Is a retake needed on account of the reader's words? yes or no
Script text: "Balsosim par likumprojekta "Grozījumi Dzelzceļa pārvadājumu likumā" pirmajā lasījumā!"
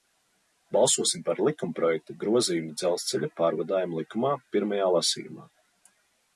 no